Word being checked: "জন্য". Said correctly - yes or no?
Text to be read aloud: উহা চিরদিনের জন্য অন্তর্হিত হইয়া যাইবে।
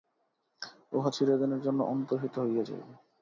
yes